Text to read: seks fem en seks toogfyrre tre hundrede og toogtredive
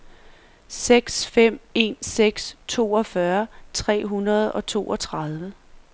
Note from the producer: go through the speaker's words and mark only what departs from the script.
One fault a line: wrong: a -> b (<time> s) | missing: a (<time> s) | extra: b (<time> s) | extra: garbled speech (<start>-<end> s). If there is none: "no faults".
no faults